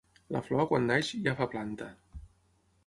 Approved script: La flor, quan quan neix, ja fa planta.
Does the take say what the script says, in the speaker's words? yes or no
no